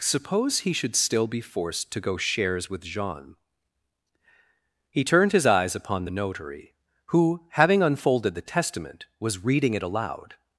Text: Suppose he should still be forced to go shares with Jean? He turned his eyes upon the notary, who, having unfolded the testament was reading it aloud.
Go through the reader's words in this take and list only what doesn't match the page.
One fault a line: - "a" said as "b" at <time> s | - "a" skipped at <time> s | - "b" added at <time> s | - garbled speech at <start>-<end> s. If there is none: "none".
none